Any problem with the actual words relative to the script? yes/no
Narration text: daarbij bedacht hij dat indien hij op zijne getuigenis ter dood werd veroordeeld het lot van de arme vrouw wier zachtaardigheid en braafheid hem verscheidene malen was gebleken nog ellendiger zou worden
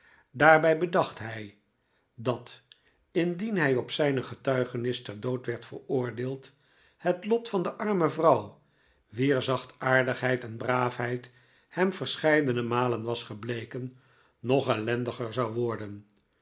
no